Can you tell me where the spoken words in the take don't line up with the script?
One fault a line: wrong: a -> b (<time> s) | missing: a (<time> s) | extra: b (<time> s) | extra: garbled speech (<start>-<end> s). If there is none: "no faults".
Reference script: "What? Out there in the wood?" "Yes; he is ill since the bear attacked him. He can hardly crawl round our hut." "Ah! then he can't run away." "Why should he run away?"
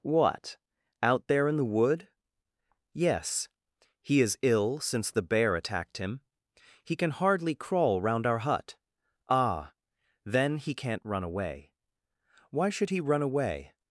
no faults